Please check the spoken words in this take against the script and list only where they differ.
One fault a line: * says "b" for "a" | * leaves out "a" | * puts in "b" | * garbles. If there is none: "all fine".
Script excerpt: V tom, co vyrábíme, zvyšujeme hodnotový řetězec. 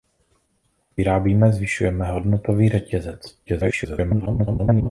* leaves out "tom co"
* garbles